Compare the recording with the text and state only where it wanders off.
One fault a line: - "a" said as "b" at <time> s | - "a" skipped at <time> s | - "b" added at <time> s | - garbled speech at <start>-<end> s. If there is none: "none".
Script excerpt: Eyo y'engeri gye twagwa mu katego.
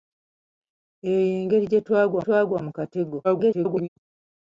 - "twagwa" added at 2.2 s
- garbled speech at 3.2-3.9 s